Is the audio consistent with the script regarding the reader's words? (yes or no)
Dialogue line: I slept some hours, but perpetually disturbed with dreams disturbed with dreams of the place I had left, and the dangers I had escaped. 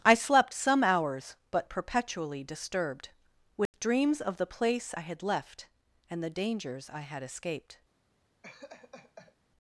no